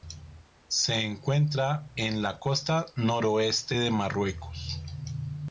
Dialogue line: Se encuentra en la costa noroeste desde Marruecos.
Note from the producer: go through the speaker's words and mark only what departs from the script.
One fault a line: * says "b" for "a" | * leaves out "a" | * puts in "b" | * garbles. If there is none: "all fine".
* says "de" for "desde"